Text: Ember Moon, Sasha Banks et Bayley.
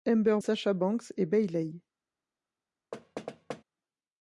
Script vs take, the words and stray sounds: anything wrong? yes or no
yes